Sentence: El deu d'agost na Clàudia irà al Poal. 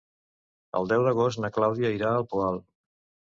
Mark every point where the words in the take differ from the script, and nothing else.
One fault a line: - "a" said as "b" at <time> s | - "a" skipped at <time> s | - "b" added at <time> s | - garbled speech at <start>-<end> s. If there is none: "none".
none